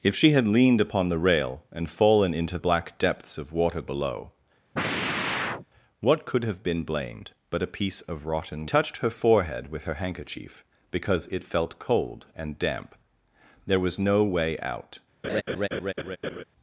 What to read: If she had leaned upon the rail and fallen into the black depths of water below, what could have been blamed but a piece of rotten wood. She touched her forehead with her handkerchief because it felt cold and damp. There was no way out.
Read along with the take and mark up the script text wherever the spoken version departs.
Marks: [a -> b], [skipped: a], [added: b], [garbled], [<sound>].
If she had leaned upon the rail and fallen into [skipped: the] black depths of water below, [sigh] what could have been blamed but a piece of rotten [skipped: wood. She] touched her forehead with her handkerchief because it felt cold and damp. There was no way out. [laugh]